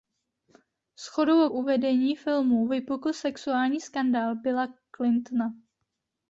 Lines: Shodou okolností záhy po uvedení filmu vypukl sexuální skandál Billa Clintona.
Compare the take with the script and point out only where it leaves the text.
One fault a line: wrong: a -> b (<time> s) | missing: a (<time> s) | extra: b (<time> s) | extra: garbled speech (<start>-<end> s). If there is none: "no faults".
missing: okolností záhy po (1.5 s)